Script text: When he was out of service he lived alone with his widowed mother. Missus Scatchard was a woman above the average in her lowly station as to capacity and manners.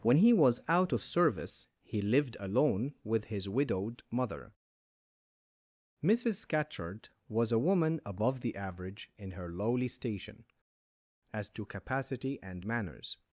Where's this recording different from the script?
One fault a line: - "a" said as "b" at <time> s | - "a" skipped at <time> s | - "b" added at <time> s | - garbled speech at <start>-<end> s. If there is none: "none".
none